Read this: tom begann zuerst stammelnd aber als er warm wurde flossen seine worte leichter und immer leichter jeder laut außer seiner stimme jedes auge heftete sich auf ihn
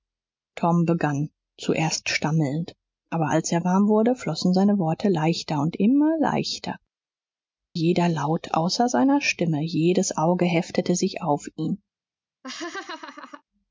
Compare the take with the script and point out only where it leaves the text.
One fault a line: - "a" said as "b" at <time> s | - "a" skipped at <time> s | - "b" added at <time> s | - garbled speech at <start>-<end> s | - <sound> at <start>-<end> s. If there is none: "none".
- laugh at 12.4-13.4 s